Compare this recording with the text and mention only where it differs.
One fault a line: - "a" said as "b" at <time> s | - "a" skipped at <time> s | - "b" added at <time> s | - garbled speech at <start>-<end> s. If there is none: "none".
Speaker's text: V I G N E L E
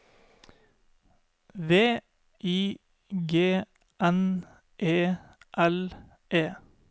none